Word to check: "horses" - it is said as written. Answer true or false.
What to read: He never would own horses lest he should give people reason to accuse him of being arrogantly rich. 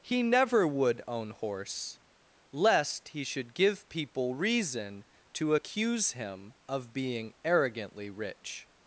false